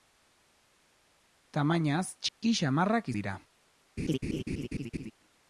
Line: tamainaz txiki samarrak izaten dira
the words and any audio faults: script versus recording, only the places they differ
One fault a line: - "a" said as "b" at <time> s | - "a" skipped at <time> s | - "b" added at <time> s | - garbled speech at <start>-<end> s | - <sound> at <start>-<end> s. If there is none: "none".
- dropout at 2.3-2.4 s
- "izaten" skipped at 3.1 s
- laugh at 4.0-5.1 s